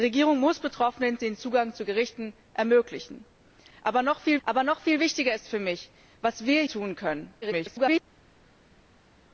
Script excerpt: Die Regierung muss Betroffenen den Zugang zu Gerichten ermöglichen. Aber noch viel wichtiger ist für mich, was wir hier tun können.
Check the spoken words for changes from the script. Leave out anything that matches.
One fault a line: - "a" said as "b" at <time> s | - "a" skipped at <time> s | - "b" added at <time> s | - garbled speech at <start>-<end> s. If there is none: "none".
- "aber noch viel" added at 4.4 s
- "hier" skipped at 6.6 s
- garbled speech at 7.4-8.0 s